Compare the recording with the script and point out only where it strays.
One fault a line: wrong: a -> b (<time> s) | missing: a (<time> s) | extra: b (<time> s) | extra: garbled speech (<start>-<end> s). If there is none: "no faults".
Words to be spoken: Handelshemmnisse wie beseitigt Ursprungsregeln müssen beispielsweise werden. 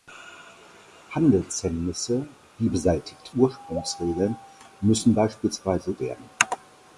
no faults